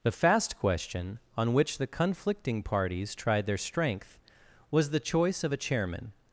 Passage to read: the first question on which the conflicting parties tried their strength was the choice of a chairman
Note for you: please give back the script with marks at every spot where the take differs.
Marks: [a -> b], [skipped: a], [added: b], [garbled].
the [first -> fast] question on which the conflicting parties tried their strength was the choice of a chairman